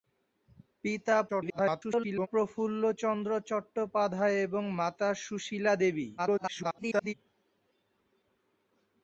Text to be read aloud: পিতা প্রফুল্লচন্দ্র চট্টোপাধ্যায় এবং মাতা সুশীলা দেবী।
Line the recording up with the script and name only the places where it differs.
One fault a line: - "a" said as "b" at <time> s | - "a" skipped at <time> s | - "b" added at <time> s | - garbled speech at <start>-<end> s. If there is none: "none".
- garbled speech at 1.3-2.3 s
- garbled speech at 6.2-7.1 s